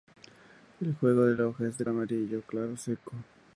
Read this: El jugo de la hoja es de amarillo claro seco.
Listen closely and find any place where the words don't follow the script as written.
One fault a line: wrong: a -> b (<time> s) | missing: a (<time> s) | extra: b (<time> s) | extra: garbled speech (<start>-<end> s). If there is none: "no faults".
no faults